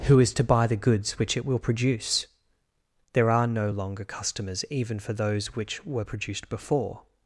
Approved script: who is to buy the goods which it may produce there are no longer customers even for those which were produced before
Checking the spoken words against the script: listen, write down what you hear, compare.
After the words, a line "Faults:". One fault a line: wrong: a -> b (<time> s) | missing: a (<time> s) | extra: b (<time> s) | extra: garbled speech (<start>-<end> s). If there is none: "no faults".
who is to buy the goods which it will produce there are no longer customers even for those which were produced before
Faults:
wrong: may -> will (1.4 s)